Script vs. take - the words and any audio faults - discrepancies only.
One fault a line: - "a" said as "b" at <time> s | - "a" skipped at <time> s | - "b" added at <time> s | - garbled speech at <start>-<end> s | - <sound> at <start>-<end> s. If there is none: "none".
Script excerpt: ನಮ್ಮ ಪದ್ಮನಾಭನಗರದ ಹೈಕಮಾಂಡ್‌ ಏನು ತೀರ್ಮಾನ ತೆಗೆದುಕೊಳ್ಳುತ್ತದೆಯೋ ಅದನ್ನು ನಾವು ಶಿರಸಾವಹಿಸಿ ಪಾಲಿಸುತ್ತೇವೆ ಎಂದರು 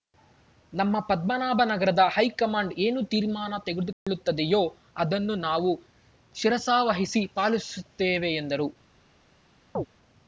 - dropout at 3.9-4.1 s
- chirp at 9.8-9.9 s